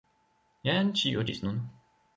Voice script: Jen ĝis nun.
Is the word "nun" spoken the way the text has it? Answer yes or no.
yes